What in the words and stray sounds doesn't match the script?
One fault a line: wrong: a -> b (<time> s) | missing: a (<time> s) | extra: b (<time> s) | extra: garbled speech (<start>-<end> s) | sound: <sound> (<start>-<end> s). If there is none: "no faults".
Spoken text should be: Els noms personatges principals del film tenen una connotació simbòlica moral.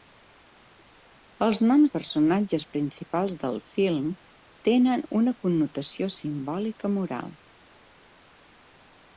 no faults